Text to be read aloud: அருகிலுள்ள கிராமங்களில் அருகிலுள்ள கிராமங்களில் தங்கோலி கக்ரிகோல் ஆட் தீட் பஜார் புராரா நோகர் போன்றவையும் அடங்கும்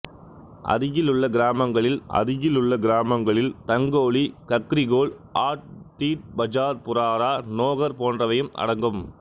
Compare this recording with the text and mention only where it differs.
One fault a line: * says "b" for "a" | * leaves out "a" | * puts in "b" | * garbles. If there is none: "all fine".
all fine